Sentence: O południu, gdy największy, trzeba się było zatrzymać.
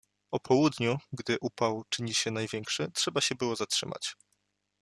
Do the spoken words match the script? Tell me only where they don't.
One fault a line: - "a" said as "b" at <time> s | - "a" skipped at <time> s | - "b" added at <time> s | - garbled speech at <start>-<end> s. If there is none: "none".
- "upał czyni się" added at 1.4 s